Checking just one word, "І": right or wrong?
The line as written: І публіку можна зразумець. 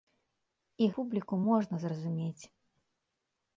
right